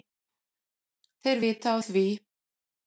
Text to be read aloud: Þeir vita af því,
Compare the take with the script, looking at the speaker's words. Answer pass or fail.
pass